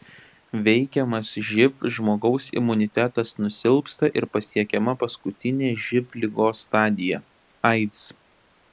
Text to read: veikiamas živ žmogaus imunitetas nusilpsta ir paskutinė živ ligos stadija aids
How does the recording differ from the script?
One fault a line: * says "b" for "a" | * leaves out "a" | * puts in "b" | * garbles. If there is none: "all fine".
* puts in "pasiekiama"